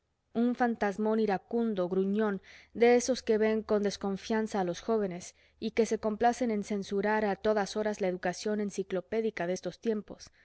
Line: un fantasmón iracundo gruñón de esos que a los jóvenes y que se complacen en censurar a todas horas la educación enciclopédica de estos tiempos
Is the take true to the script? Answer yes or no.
no